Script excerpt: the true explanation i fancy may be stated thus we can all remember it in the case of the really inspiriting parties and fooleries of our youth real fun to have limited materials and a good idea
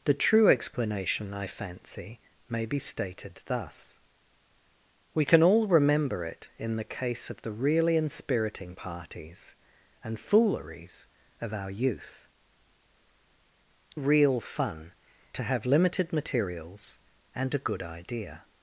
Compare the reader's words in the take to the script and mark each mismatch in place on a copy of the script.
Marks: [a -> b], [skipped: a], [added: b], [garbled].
the true explanation i fancy may be stated thus we can all remember it in the case of the really inspiriting parties and fooleries of our youth real fun to have limited materials and a good idea